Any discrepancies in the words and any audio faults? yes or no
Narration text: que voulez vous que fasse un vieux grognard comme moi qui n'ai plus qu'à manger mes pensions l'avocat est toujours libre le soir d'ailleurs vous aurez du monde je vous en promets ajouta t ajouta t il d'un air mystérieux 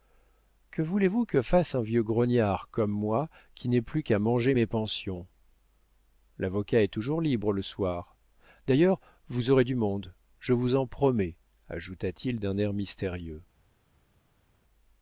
yes